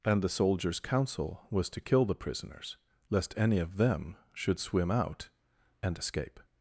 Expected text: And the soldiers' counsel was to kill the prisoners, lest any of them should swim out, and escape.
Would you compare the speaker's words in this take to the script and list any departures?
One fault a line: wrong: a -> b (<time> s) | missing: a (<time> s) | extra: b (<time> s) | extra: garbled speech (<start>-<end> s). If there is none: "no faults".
no faults